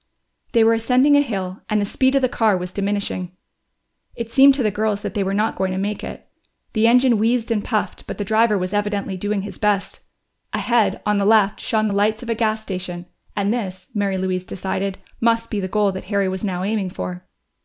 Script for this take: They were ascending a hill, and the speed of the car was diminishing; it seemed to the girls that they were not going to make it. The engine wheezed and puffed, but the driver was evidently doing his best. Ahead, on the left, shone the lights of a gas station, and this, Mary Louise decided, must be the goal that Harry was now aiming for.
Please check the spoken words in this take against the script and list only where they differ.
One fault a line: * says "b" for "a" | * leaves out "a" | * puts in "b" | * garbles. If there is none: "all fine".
all fine